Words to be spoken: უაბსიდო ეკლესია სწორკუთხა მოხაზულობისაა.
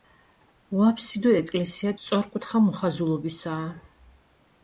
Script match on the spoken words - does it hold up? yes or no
yes